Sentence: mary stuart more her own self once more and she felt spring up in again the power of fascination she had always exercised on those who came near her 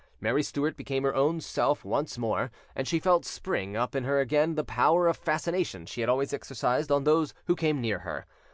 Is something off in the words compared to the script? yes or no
yes